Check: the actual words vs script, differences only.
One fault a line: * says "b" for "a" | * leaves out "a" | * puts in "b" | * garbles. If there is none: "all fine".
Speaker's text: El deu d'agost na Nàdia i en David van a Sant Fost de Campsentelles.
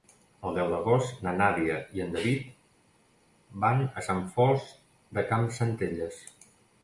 all fine